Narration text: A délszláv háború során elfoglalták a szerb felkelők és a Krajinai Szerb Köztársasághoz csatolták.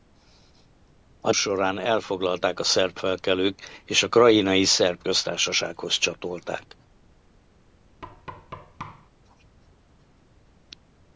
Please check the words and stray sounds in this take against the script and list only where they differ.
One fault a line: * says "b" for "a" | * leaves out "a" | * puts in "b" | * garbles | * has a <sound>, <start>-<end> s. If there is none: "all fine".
* leaves out "délszláv háború"
* has a thud, 8.0-9.1 s